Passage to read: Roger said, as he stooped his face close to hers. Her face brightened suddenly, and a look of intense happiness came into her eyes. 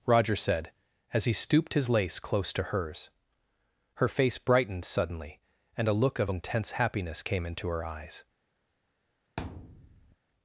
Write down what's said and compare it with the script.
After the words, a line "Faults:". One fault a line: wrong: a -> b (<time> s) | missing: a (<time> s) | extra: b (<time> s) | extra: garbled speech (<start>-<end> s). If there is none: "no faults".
Roger said, as he stooped his lace close to hers. Her face brightened suddenly, and a look of intense happiness came into her eyes.
Faults:
wrong: face -> lace (1.9 s)